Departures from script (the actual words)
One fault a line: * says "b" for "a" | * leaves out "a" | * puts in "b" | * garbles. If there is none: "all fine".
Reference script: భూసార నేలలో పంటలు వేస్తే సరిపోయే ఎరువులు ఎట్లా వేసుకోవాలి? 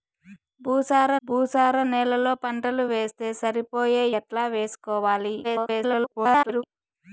* puts in "భూసార"
* leaves out "ఎరువులు"
* garbles